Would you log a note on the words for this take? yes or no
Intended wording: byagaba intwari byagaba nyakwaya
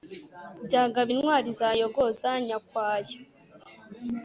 yes